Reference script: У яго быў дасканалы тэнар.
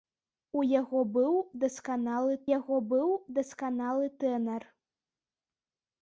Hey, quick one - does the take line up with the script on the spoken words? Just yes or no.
no